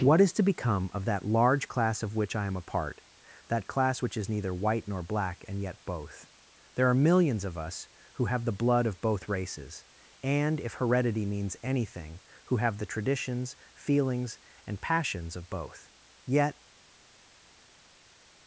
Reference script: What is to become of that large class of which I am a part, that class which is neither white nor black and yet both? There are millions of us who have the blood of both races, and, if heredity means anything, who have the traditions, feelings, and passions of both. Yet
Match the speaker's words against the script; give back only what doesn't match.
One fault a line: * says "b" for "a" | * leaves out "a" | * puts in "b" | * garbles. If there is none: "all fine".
all fine